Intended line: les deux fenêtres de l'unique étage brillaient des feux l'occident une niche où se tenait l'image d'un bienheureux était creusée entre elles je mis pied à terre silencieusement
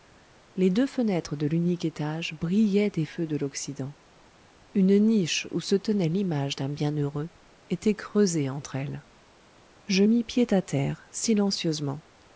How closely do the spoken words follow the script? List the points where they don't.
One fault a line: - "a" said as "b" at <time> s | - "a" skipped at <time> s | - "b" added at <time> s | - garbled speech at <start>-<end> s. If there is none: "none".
- "de" added at 3.3 s